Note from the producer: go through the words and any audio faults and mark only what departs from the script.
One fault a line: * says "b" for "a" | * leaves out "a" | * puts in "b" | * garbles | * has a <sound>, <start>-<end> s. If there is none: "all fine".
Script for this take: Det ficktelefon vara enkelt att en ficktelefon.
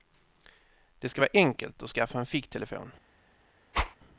* says "ska" for "ficktelefon"
* puts in "skaffa"
* has a whoosh, 3.7-4.0 s